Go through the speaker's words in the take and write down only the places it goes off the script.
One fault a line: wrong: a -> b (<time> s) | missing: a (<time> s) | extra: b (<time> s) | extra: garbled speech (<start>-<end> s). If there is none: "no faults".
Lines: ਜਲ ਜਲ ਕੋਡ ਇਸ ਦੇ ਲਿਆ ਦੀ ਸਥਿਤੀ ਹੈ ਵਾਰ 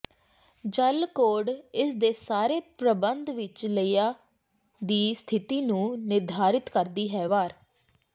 missing: ਜਲ (1.1 s)
extra: ਸਾਰੇ ਪ੍ਰਬੰਧ ਵਿੱਚ (2.1 s)
extra: ਨੂੰ ਨਿਰਧਾਰਿਤ ਕਰਦੀ (5.6 s)